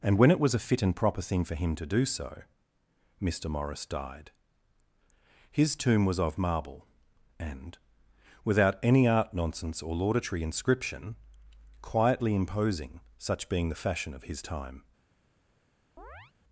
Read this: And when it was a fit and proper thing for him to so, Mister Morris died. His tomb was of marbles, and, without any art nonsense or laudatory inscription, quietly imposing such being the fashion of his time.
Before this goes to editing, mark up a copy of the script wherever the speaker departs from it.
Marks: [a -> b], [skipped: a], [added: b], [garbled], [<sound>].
And when it was a fit and proper thing for him to [added: do] so, Mister Morris died. His tomb was of [marbles, -> marble] and, without any art nonsense or laudatory inscription, quietly imposing such being the fashion of his time. [chirp]